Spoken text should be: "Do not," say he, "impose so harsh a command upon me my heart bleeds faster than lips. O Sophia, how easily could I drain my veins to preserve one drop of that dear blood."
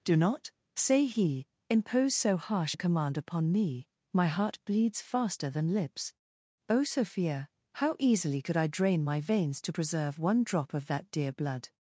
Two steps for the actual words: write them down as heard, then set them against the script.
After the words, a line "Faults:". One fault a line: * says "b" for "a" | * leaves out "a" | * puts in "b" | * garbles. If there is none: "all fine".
"Do not," say he, "impose so harsh a command upon me my heart bleeds faster than lips. O Sophia, how easily could I drain my veins to preserve one drop of that dear blood."
Faults:
all fine